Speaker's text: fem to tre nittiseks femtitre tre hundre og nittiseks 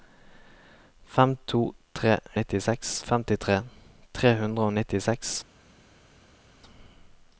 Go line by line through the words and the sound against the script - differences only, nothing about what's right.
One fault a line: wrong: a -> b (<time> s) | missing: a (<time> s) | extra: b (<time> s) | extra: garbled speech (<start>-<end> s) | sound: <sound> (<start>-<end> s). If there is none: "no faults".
no faults